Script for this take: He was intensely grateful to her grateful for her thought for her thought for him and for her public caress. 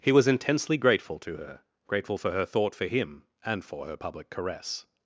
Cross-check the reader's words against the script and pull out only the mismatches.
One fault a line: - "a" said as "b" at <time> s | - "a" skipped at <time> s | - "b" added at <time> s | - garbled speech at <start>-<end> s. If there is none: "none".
- "her thought for" skipped at 2.9 s